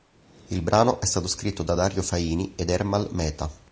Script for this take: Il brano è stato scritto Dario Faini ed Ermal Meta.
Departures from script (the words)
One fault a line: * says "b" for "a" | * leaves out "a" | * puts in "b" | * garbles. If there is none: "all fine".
* puts in "da"